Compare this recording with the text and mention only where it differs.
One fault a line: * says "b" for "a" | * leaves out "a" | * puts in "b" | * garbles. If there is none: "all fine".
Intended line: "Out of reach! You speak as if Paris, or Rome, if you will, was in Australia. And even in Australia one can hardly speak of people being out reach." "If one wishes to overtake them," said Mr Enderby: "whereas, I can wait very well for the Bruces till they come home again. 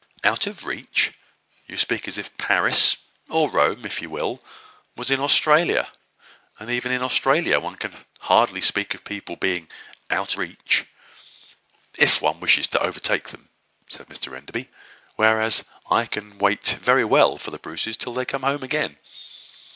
all fine